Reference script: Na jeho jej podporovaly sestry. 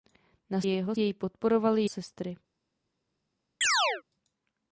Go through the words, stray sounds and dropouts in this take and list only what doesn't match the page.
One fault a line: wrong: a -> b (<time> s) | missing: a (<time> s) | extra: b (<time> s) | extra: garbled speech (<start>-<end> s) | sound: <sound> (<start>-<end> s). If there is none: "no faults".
sound: chirp (3.6-4.0 s)